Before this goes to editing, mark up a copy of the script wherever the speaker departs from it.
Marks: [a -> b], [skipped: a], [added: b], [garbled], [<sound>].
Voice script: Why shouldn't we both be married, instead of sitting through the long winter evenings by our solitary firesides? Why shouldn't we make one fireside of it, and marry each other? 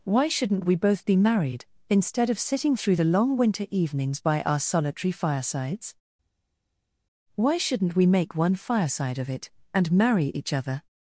Why shouldn't we both be married, instead of sitting through the long winter evenings by our solitary firesides? Why shouldn't we make one fireside of it, and marry each other?